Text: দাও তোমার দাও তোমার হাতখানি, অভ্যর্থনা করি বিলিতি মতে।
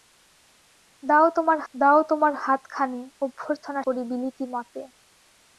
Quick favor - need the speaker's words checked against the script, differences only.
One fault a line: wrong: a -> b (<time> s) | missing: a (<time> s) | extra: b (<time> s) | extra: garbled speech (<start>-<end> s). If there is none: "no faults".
no faults